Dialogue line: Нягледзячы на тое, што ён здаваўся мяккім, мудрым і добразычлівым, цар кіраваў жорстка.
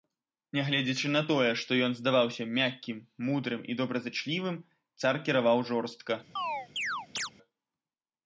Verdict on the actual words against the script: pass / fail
pass